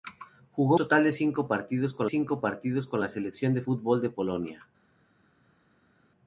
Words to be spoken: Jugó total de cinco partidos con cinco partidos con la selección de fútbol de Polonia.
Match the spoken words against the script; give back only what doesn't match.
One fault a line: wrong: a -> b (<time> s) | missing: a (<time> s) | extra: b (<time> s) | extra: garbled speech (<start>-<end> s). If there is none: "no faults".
no faults